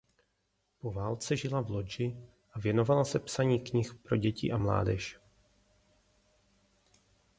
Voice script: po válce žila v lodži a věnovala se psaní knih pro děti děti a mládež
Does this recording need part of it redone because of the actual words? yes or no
yes